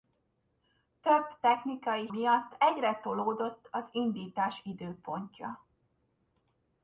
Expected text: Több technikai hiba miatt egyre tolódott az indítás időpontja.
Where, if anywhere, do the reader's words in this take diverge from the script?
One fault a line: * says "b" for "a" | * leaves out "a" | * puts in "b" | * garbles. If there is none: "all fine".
* leaves out "hiba"